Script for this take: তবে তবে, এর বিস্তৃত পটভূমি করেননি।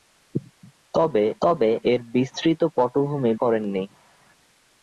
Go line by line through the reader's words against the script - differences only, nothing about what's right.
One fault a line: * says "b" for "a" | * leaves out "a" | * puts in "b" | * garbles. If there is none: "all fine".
all fine